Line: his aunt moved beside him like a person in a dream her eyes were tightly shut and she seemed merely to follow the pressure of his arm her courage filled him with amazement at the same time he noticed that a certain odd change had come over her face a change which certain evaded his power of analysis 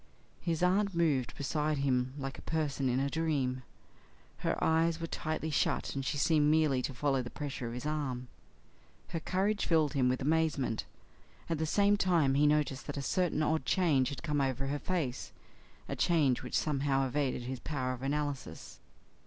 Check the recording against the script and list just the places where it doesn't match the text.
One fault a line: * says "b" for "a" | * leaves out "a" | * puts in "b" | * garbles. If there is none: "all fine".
* says "somehow" for "certain"